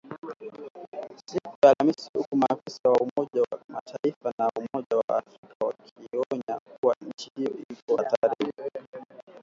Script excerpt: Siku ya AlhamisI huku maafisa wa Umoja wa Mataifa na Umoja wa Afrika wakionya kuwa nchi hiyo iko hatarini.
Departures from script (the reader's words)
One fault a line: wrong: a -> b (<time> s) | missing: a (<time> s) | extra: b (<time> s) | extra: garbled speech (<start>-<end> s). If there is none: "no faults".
no faults